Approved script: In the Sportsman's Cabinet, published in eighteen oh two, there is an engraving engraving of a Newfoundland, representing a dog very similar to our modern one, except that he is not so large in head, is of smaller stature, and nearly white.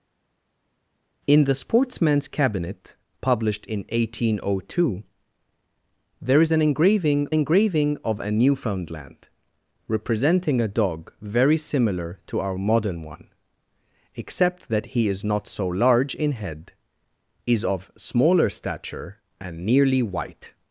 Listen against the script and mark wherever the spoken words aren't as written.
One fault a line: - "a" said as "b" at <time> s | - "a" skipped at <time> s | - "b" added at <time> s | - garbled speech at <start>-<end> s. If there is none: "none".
none